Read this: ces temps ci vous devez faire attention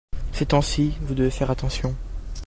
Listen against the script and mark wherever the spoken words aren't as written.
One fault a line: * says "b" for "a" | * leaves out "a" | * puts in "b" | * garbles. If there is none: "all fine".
all fine